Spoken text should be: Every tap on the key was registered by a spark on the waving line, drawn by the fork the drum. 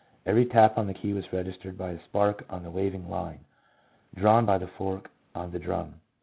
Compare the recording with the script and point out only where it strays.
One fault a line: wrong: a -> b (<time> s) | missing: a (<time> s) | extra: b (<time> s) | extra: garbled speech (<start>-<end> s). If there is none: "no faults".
extra: on (5.3 s)